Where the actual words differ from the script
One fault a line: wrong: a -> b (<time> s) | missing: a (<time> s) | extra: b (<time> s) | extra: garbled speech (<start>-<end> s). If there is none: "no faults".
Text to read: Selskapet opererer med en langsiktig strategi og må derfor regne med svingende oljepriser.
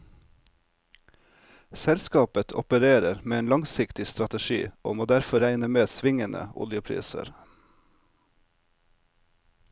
no faults